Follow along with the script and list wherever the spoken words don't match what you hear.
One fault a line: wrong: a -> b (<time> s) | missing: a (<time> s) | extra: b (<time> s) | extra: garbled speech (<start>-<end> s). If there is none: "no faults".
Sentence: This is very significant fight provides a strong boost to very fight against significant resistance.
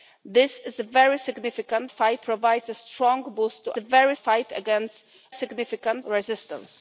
no faults